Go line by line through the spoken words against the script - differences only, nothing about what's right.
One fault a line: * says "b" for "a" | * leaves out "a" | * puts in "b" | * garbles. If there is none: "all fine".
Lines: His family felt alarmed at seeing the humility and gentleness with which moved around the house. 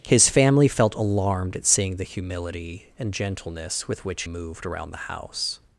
all fine